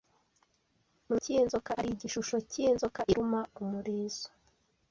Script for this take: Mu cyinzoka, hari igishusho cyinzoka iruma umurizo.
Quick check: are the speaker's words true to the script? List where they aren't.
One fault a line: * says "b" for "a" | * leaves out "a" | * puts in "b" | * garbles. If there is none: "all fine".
all fine